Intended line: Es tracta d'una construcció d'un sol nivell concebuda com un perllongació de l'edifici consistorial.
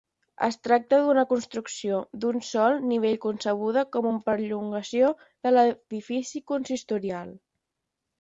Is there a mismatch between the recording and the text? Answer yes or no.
yes